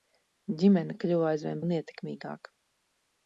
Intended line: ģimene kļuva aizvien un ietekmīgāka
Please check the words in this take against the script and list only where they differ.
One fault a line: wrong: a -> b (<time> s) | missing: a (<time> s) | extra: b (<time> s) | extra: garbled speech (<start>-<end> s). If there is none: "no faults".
no faults